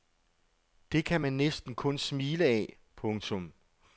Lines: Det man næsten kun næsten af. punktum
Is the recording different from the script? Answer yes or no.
yes